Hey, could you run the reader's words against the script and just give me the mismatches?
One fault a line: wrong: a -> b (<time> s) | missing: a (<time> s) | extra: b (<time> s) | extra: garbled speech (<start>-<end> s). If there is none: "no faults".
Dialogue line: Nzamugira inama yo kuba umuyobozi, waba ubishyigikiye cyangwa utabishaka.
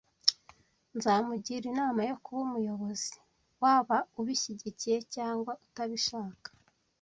no faults